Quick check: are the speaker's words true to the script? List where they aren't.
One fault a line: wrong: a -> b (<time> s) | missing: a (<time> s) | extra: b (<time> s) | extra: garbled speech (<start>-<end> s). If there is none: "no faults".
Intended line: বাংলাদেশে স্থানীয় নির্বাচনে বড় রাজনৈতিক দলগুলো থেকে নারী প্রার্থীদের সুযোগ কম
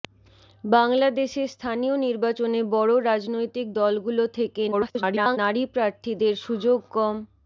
extra: garbled speech (4.7-5.4 s)